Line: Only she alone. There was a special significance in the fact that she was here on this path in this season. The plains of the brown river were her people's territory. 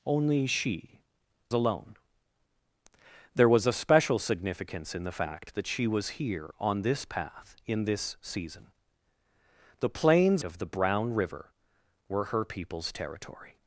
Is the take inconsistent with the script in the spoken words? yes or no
no